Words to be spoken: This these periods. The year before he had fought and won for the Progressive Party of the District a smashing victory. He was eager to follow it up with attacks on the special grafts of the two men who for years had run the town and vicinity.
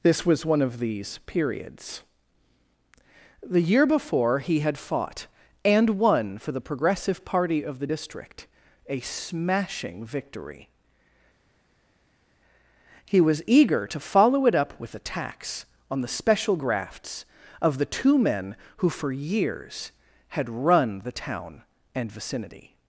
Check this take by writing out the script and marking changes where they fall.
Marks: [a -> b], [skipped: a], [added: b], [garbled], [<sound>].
This [added: was one of] these periods. The year before he had fought and won for the Progressive Party of the District a smashing victory. He was eager to follow it up with attacks on the special grafts of the two men who for years had run the town and vicinity.